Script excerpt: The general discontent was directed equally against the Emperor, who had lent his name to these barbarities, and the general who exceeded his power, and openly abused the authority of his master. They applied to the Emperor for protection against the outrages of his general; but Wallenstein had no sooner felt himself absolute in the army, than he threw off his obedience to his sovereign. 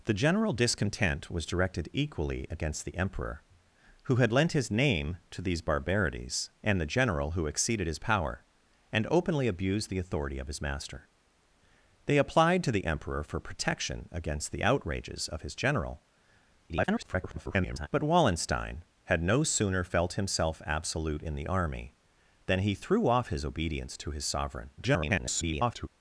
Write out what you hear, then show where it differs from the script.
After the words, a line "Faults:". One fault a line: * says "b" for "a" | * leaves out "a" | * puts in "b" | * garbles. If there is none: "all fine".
The general discontent was directed equally against the Emperor, who had lent his name to these barbarities, and the general who exceeded his power, and openly abused the authority of his master. They applied to the Emperor for protection against the outrages of his general; [garbled] but Wallenstein had no sooner felt himself absolute in the army, than he threw off his obedience to his sovereign. [garbled]
Faults:
* garbles
* garbles